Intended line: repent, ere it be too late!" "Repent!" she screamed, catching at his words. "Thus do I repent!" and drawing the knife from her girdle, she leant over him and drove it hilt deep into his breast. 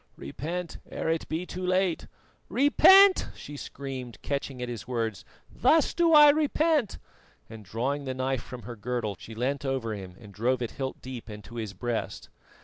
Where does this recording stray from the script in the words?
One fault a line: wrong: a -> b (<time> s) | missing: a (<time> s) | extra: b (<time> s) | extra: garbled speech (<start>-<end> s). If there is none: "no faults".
no faults